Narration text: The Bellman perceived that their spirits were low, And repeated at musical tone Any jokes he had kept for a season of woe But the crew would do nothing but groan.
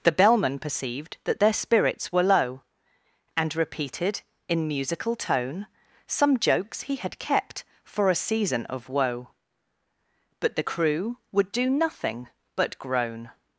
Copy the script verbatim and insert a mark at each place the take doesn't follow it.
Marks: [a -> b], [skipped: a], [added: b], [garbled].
The Bellman perceived that their spirits were low, And repeated [at -> in] musical tone [Any -> Some] jokes he had kept for a season of woe But the crew would do nothing but groan.